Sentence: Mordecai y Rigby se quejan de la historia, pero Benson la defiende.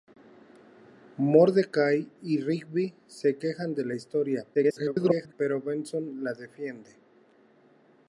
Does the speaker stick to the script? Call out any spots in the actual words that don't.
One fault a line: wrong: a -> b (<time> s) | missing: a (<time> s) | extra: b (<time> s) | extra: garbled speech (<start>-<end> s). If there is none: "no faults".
extra: garbled speech (4.5-5.3 s)